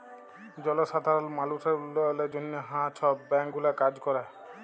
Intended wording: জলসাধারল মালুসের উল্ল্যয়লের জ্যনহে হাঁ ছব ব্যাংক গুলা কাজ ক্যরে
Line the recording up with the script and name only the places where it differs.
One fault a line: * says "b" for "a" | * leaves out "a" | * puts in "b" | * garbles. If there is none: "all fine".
all fine